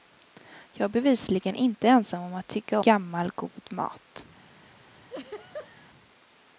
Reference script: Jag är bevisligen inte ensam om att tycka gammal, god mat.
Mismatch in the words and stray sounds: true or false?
true